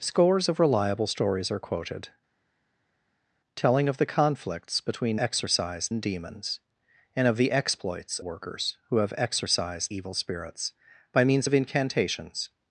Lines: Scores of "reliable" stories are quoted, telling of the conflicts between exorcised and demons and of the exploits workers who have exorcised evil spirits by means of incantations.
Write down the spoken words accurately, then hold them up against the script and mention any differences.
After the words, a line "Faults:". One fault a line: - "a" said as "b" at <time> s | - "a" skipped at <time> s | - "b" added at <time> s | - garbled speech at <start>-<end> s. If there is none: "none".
Scores of "reliable" stories are quoted, telling of the conflicts between exorcised and demons and of the exploits workers who have exorcised evil spirits by means of incantations.
Faults:
none